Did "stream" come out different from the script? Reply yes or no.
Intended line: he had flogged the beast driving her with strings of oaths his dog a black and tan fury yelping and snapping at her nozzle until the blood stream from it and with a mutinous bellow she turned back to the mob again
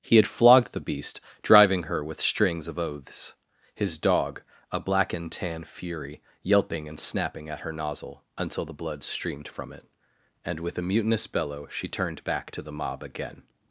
yes